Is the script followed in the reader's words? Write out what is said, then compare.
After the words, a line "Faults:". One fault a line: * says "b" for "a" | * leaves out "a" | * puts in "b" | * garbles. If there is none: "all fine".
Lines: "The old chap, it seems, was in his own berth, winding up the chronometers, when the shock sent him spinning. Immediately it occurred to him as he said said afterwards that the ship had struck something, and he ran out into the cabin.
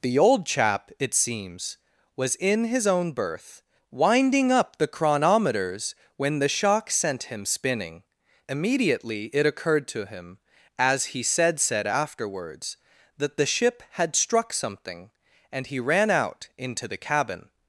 "The old chap, it seems, was in his own berth, winding up the chronometers, when the shock sent him spinning. Immediately it occurred to him as he said said afterwards that the ship had struck something, and he ran out into the cabin.
Faults:
all fine